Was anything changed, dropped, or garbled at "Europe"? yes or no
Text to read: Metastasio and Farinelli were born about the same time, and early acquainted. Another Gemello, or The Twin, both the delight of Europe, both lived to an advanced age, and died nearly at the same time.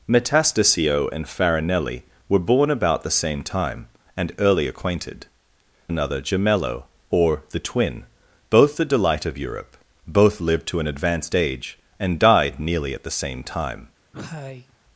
no